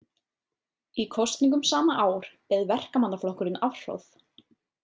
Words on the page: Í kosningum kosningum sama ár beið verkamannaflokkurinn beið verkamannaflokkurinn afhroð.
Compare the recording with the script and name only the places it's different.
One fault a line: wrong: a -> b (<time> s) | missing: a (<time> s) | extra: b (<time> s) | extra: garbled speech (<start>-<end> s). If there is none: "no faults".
missing: kosningum (1.6 s)
missing: beið verkamannaflokkurinn (3.6 s)